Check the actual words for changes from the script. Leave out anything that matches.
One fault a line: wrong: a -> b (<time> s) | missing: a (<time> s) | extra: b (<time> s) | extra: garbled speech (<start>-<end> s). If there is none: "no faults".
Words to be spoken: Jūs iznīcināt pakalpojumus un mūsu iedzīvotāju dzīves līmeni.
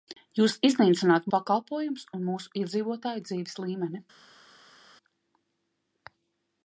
no faults